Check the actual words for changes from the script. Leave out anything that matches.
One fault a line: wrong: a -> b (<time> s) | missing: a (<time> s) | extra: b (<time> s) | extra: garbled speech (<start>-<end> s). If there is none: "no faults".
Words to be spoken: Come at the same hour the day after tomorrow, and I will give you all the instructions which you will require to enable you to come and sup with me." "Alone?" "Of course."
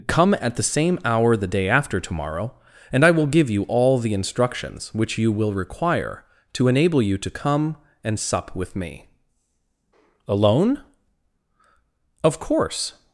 no faults